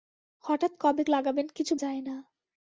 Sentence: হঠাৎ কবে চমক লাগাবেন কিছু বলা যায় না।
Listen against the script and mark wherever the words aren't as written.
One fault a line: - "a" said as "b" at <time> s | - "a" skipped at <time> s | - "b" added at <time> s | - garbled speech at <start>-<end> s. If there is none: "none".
- "চমক" skipped at 1.0 s
- "বলা" skipped at 1.7 s